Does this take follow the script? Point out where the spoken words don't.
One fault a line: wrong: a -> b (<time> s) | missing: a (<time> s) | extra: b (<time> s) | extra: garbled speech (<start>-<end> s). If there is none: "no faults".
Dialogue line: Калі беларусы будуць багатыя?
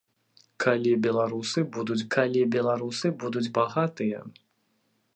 extra: калі беларусы будуць (2.1 s)